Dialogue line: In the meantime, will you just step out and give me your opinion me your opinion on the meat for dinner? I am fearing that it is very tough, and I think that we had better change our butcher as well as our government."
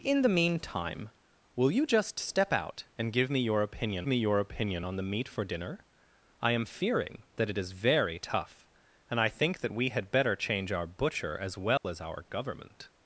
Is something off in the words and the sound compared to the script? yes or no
yes